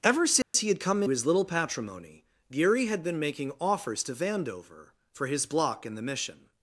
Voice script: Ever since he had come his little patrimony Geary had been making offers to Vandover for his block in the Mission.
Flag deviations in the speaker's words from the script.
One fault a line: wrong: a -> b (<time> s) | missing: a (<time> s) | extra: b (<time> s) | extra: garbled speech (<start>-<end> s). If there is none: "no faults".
no faults